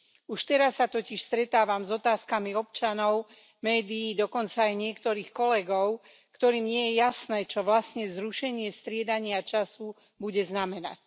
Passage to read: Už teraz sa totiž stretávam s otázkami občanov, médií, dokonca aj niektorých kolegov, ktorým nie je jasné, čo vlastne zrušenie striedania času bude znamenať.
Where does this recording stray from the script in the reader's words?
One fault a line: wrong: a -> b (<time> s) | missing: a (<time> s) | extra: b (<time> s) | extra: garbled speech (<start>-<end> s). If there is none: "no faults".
no faults